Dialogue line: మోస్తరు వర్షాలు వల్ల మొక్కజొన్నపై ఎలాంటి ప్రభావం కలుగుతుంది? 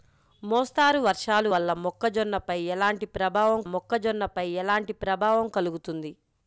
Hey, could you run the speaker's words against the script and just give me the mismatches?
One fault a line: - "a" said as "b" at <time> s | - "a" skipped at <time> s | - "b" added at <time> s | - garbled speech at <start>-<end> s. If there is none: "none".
- "మొక్కజొన్నపై ఎలాంటి ప్రభావం" added at 3.7 s